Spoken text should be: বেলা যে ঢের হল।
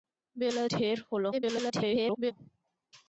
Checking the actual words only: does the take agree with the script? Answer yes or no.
no